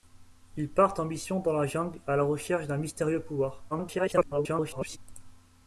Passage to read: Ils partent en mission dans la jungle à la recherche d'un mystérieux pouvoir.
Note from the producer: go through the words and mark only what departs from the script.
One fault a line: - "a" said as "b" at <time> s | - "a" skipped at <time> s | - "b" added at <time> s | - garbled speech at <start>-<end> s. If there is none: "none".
- garbled speech at 3.7-5.0 s